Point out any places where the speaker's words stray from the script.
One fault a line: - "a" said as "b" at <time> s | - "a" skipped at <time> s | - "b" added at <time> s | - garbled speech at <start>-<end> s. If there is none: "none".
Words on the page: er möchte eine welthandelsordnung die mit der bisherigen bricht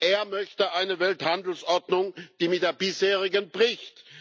none